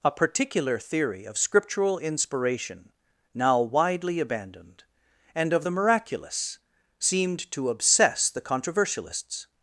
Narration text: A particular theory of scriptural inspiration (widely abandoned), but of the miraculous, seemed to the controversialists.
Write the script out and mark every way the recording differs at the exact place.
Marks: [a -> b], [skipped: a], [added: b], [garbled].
A particular theory of scriptural inspiration [added: now] (widely abandoned), [but -> and] of the miraculous, seemed to [added: obsess] the controversialists.